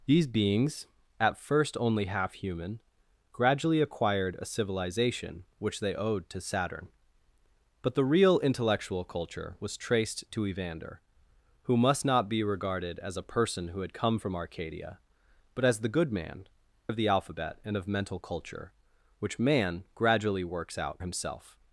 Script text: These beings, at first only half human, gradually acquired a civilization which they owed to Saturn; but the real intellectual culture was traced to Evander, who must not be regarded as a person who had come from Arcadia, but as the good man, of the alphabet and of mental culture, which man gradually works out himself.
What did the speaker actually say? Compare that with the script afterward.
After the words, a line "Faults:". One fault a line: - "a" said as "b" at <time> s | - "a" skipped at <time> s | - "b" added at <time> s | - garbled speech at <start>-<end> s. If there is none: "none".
These beings, at first only half human, gradually acquired a civilization which they owed to Saturn; but the real intellectual culture was traced to Evander, who must not be regarded as a person who had come from Arcadia, but as the good man, of the alphabet and of mental culture, which man gradually works out himself.
Faults:
none